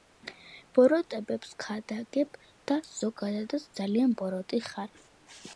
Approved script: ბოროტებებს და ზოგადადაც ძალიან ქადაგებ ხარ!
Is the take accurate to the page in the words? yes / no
no